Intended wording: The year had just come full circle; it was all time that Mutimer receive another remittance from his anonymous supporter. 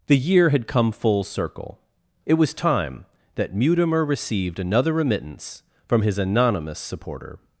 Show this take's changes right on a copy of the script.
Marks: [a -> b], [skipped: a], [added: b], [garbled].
The year had [skipped: just] come full circle; it was [skipped: all] time that Mutimer [receive -> received] another remittance from his anonymous supporter.